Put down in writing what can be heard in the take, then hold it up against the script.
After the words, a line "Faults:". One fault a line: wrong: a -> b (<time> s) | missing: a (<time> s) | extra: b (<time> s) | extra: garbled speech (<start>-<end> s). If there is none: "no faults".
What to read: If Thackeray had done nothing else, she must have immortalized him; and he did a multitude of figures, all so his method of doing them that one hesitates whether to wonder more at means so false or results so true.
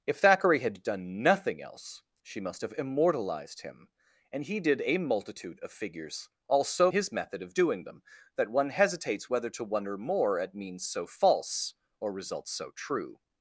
If Thackeray had done nothing else, she must have immortalized him; and he did a multitude of figures, all so his method of doing them that one hesitates whether to wonder more at means so false or results so true.
Faults:
no faults